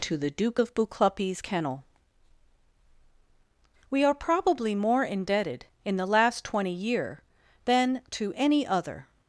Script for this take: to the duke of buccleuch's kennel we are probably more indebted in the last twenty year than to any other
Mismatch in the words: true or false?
false